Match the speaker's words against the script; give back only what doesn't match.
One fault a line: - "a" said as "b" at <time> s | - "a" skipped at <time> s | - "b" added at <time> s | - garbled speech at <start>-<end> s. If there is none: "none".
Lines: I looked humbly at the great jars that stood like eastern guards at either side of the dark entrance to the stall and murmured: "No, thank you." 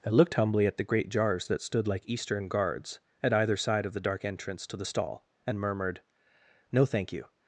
none